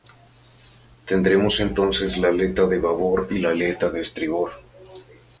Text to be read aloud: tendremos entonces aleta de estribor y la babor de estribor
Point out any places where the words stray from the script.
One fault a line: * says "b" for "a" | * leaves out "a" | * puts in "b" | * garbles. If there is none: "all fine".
* puts in "la"
* says "babor" for "estribor"
* says "aleta" for "babor"